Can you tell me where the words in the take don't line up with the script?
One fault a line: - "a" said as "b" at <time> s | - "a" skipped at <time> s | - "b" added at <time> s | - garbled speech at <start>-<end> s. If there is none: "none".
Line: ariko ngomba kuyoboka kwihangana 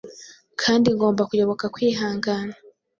- "ariko" said as "kandi" at 0.6 s